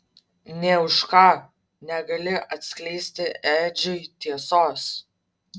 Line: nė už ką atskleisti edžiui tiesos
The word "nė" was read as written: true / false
true